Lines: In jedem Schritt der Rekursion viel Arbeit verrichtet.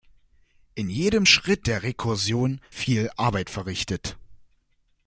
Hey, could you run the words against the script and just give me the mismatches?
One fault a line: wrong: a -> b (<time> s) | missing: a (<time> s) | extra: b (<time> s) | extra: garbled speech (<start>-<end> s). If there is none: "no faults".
no faults